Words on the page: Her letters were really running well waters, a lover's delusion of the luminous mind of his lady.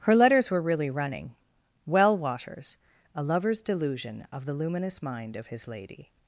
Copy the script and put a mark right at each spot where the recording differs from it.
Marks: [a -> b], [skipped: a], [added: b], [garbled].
Her letters were really running well waters, a lover's delusion of the luminous mind of his lady.